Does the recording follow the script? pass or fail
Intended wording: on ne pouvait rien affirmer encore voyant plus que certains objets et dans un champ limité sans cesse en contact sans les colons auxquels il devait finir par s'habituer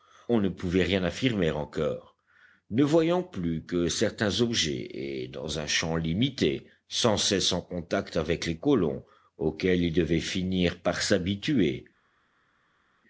fail